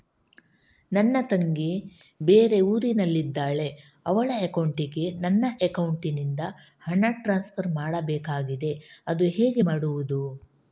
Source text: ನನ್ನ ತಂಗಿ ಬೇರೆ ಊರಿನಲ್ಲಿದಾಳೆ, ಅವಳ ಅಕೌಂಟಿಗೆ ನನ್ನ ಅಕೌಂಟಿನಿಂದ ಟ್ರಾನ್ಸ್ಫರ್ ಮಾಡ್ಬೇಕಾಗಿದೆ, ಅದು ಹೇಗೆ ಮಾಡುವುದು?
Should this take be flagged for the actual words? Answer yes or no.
yes